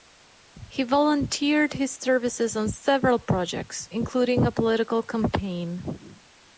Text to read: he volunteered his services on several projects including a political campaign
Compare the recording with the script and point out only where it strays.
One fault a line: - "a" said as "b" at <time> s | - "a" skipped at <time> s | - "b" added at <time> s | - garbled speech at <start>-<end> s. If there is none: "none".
none